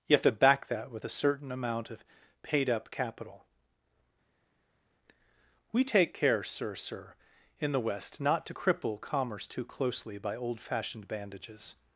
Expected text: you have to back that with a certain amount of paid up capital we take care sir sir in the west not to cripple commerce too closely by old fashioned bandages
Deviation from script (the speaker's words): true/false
false